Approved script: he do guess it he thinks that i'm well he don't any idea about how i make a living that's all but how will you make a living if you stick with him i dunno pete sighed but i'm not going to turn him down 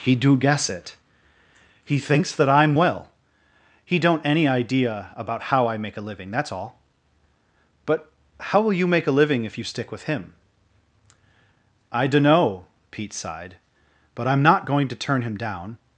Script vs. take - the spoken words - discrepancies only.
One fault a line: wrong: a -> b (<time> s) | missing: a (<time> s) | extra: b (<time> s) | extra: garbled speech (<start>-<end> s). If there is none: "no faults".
no faults